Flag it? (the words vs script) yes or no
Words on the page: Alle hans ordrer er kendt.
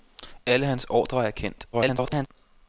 yes